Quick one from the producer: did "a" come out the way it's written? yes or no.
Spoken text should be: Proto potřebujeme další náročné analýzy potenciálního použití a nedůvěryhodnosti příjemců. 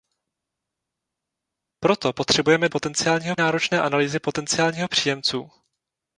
no